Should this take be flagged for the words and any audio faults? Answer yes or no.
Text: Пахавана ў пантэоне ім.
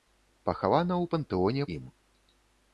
no